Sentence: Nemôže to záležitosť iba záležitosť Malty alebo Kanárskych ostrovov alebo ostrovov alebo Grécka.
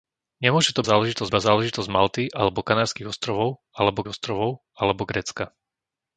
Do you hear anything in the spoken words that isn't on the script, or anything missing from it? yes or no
no